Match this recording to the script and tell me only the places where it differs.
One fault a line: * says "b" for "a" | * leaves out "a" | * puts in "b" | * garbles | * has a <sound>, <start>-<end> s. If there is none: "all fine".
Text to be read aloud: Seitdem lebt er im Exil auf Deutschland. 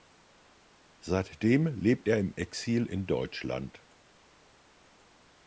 * says "in" for "auf"